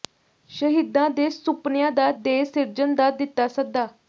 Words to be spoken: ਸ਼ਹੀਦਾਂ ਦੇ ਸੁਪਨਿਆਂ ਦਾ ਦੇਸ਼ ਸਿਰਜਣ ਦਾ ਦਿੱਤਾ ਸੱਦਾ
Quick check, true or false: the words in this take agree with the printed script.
true